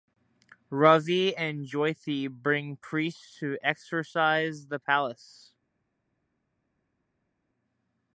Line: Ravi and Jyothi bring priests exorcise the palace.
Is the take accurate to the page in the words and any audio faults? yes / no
no